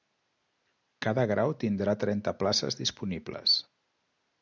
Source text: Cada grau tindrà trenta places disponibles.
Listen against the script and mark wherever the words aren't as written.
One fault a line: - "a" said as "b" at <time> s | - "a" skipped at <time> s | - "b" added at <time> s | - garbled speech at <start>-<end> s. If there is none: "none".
none